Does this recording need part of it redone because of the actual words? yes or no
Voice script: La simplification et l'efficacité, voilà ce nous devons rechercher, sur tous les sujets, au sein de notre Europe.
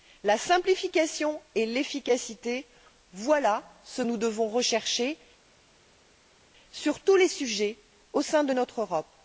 no